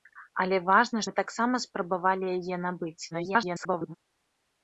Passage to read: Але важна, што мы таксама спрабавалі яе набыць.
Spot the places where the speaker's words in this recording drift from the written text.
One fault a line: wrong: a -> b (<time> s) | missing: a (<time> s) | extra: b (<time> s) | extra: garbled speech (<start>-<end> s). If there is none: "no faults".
missing: што (1.0 s)
extra: garbled speech (3.1-4.0 s)